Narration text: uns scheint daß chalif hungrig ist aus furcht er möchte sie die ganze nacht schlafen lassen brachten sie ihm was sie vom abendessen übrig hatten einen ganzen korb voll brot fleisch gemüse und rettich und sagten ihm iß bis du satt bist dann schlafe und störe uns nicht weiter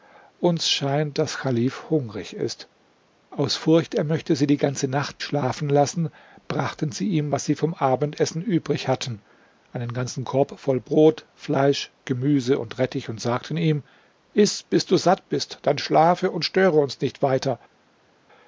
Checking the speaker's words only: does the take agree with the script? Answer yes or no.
yes